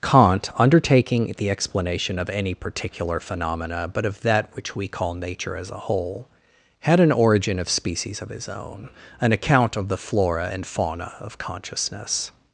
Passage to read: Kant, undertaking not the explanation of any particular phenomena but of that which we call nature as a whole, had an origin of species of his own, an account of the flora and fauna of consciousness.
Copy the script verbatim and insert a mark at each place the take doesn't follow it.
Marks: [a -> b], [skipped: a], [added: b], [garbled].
Kant, undertaking [skipped: not] the explanation of any particular phenomena but of that which we call nature as a whole, had an origin of species of his own, an account of the flora and fauna of consciousness.